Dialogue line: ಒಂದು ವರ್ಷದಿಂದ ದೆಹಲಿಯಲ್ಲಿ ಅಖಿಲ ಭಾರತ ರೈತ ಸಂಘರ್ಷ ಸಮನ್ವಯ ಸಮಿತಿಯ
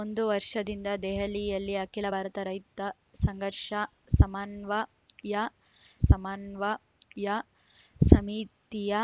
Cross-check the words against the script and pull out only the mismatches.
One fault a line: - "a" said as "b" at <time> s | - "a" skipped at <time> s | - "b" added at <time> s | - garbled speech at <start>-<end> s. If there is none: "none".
- "ಸಮನ್ವಯ" added at 6.1 s